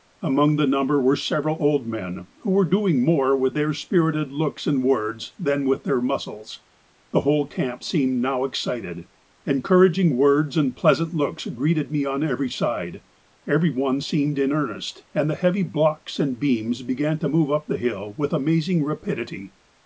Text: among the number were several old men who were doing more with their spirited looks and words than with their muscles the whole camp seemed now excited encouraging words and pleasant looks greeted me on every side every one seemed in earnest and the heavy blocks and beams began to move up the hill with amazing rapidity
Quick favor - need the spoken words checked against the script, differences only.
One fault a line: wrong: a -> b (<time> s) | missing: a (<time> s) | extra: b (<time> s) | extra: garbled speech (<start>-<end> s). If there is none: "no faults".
no faults